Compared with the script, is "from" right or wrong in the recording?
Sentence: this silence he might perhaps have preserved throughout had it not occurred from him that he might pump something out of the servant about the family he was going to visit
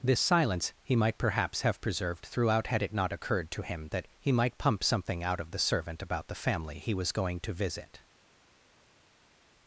wrong